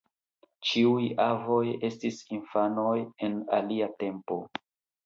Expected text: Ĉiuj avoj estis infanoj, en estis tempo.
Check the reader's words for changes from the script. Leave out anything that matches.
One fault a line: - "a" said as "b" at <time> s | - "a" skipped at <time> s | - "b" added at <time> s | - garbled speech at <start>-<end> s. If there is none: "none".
- "estis" said as "alia" at 3.6 s